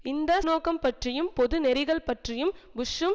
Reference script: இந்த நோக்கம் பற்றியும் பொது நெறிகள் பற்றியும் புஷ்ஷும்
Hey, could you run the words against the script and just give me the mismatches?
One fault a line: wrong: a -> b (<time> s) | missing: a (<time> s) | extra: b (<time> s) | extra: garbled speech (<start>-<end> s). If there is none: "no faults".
no faults